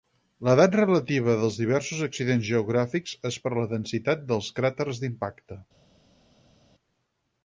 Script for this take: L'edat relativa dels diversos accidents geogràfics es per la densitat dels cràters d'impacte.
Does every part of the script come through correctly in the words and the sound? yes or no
yes